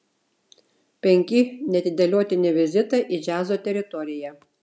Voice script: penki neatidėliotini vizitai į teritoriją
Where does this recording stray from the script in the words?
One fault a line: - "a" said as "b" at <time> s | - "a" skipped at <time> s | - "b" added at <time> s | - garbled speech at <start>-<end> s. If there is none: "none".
- "džiazo" added at 3.3 s